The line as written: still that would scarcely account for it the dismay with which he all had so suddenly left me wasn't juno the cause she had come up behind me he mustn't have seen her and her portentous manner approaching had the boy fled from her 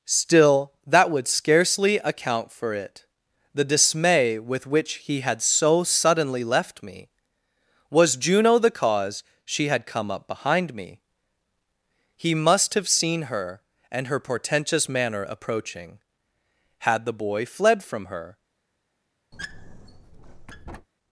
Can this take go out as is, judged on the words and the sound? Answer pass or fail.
fail